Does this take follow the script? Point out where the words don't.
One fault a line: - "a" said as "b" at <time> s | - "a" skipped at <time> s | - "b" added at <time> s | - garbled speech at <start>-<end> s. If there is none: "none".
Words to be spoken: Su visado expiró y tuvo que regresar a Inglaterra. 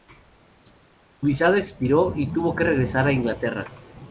none